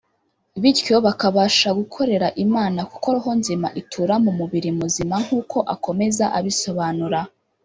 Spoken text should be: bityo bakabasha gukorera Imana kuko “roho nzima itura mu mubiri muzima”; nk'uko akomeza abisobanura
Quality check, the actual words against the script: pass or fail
pass